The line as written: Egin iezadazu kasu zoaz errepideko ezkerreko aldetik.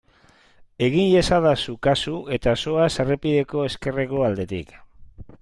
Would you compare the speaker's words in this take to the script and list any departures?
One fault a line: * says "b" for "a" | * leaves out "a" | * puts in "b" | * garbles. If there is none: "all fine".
* puts in "eta"